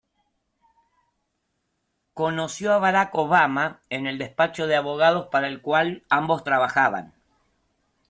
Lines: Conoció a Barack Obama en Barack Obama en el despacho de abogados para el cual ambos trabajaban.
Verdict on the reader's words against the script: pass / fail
fail